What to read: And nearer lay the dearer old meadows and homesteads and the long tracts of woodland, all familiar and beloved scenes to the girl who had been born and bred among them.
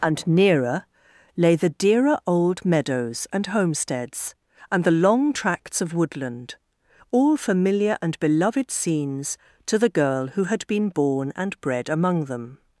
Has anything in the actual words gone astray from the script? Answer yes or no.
no